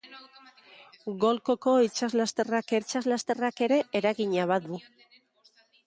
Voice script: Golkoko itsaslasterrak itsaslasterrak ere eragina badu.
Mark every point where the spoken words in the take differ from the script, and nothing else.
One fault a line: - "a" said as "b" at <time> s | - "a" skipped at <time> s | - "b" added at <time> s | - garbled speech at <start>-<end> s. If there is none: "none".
none